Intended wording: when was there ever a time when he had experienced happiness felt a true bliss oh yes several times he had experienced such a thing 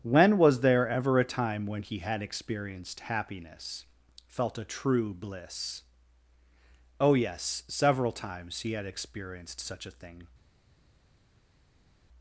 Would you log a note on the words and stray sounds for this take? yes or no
no